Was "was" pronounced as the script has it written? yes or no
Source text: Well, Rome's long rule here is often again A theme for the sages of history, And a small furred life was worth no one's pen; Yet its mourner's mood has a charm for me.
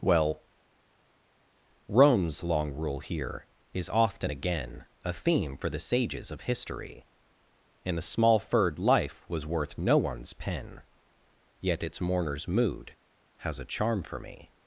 yes